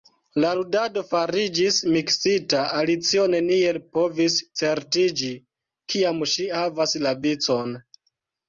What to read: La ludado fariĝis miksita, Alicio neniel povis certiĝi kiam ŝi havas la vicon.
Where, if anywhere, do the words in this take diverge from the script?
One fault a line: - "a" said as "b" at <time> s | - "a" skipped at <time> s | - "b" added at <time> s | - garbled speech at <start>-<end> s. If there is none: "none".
none